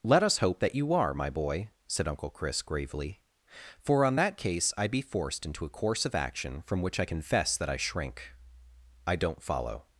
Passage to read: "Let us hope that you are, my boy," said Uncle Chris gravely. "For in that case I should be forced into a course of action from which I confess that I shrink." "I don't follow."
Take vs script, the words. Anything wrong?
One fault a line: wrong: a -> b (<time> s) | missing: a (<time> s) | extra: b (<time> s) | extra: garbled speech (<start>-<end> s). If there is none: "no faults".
wrong: in -> on (4.1 s)
missing: should (4.9 s)